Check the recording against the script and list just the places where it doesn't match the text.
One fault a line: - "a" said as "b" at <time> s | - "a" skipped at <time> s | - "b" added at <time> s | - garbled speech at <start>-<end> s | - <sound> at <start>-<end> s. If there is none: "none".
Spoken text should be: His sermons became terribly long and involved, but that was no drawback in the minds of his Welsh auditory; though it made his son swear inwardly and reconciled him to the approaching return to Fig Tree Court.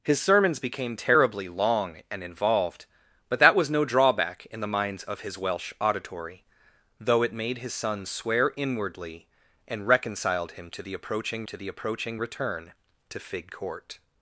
- "to the approaching" added at 11.4 s
- "Tree" skipped at 13.5 s